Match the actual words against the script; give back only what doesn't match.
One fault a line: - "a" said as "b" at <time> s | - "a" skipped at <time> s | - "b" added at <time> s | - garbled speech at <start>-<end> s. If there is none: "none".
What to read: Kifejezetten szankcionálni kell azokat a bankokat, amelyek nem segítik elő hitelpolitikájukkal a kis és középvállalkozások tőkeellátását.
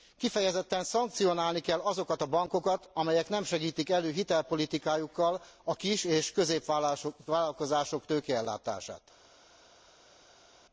none